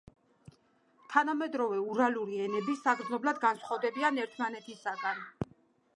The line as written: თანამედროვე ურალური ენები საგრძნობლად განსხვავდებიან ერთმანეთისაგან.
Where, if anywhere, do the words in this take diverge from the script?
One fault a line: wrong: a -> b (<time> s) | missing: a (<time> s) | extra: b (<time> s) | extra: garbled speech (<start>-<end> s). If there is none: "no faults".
no faults